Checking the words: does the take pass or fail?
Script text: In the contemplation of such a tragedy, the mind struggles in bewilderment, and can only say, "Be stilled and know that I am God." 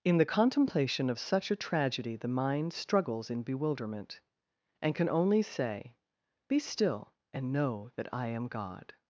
fail